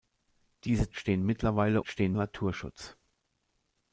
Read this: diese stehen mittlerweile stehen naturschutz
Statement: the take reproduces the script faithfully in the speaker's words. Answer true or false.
true